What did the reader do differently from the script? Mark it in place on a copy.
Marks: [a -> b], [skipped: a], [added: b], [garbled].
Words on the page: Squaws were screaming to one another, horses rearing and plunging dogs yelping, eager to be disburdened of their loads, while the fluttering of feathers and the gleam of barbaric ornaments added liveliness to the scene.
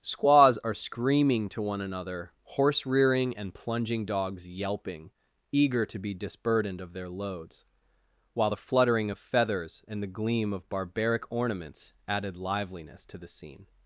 Squaws [were -> are] screaming to one another, [horses -> horse] rearing and plunging dogs yelping, eager to be disburdened of their loads, while the fluttering of feathers and the gleam of barbaric ornaments added liveliness to the scene.